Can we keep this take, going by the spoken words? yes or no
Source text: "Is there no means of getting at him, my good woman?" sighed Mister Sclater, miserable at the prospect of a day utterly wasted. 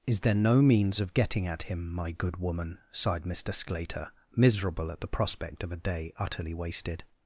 yes